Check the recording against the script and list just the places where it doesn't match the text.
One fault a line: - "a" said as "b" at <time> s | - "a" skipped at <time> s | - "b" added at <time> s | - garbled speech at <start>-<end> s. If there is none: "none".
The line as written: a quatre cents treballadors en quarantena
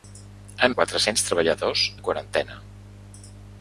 none